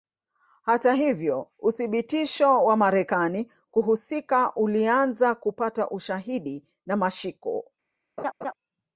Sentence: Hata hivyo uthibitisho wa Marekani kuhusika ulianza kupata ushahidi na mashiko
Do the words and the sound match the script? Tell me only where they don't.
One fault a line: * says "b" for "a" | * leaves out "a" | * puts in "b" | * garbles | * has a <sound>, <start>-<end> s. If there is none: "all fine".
* has a laugh, 8.2-8.5 s